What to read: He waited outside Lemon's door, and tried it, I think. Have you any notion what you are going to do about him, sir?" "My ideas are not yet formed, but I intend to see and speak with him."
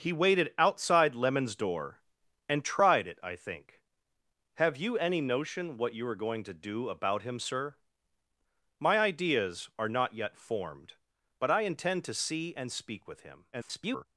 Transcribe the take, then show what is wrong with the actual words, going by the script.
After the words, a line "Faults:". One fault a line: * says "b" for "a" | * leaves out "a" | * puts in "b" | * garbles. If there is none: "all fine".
He waited outside Lemon's door, and tried it, I think. Have you any notion what you are going to do about him, sir?" "My ideas are not yet formed, but I intend to see and speak with him." [garbled]
Faults:
* garbles